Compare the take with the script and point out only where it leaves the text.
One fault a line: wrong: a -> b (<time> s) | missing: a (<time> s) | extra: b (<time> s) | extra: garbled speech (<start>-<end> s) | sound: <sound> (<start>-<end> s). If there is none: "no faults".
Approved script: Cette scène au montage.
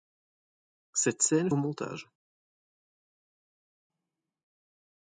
no faults